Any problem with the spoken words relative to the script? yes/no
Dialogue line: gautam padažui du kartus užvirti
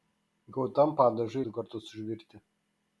no